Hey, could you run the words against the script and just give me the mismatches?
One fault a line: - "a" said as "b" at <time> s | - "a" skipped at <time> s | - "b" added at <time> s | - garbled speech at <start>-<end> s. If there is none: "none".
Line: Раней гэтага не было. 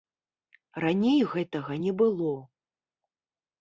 none